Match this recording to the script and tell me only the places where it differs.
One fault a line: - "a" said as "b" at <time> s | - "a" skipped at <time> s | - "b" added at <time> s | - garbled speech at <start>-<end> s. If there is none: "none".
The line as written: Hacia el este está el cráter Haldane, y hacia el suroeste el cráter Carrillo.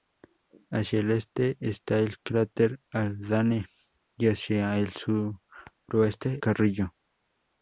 - "el cráter" skipped at 6.4 s